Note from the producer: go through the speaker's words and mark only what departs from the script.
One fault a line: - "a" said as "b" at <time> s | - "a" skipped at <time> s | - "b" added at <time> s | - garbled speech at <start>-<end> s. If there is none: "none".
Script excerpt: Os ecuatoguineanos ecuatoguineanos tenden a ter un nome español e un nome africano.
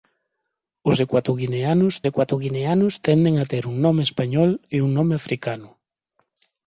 none